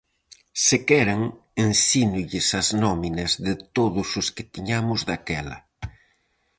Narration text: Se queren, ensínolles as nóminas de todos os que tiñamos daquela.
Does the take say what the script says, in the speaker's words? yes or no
yes